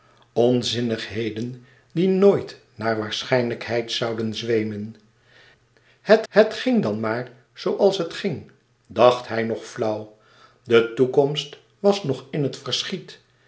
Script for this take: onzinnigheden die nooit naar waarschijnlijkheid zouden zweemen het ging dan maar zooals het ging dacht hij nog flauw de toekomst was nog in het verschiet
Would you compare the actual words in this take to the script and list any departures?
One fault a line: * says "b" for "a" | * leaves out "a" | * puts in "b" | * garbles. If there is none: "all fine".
* puts in "het"